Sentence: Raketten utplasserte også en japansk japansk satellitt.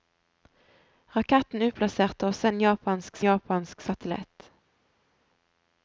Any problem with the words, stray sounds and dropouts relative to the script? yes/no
no